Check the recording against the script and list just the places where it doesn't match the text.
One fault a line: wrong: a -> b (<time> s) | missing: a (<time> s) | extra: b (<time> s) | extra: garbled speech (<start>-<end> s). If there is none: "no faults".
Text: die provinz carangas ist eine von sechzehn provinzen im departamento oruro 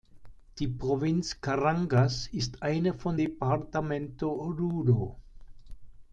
missing: sechzehn provinzen im (3.2 s)